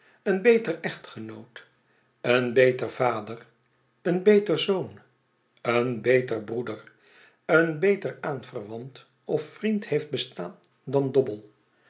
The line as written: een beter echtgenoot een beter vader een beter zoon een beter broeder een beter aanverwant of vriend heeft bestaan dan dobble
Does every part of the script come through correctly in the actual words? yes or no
yes